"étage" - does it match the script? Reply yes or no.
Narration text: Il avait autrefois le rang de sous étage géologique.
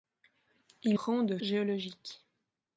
no